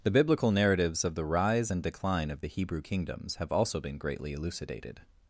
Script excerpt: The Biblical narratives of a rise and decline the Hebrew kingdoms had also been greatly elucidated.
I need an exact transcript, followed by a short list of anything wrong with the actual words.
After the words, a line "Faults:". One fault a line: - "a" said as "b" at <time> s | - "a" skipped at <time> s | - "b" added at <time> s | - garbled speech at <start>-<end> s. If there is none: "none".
The Biblical narratives of the rise and decline of the Hebrew kingdoms have also been greatly elucidated.
Faults:
- "a" said as "the" at 1.1 s
- "of" added at 2.3 s
- "had" said as "have" at 3.4 s